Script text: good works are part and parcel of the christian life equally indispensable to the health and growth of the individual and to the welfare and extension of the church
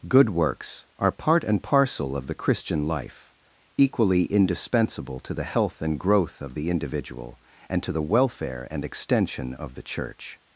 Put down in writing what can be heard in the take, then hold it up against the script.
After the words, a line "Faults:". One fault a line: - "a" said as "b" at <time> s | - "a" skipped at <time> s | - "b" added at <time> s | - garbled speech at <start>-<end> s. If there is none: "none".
good works are part and parcel of the christian life equally indispensable to the health and growth of the individual and to the welfare and extension of the church
Faults:
none